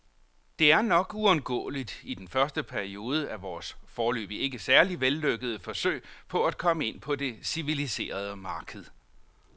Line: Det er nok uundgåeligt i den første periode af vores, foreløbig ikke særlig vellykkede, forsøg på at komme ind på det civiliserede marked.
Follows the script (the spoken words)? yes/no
yes